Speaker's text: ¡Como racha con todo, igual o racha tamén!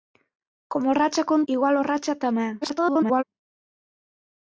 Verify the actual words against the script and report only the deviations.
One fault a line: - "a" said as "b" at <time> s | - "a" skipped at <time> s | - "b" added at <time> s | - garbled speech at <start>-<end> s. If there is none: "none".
- "todo" skipped at 1.4 s
- garbled speech at 2.6-3.2 s